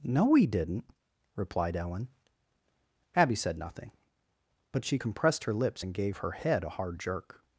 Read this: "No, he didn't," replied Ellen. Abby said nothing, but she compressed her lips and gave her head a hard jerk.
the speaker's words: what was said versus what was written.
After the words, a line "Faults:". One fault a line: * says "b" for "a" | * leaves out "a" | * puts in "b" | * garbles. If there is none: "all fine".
"No, he didn't," replied Ellen. Abby said nothing, but she compressed her lips and gave her head a hard jerk.
Faults:
all fine